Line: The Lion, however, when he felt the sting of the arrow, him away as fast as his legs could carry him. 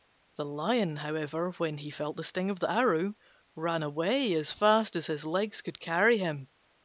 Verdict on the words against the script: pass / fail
fail